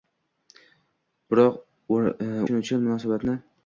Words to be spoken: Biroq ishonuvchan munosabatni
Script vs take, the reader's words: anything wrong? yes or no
no